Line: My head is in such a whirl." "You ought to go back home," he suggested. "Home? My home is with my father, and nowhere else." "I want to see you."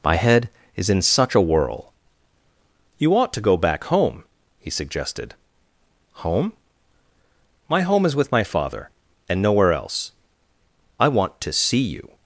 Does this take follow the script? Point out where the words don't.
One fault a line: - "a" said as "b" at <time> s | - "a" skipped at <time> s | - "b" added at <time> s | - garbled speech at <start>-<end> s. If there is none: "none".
none